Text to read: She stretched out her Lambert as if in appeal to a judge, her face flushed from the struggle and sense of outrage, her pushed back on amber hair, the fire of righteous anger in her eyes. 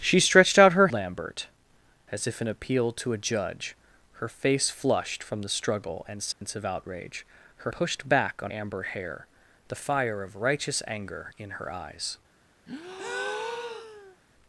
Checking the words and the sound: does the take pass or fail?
fail